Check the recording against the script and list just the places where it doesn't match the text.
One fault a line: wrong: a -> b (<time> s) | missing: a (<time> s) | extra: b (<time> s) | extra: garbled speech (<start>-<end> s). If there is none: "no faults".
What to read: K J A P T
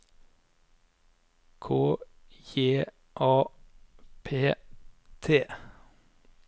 no faults